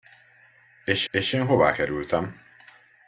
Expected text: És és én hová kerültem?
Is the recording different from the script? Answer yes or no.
no